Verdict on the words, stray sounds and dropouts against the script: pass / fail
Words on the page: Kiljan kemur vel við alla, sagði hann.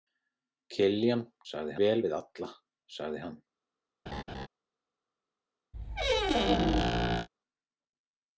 fail